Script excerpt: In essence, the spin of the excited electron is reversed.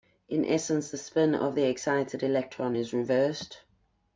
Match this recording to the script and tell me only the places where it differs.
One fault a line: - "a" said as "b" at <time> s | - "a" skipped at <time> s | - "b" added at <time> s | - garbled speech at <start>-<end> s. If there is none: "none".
none